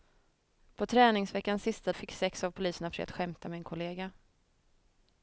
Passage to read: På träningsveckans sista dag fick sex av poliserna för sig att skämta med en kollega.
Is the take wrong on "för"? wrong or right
wrong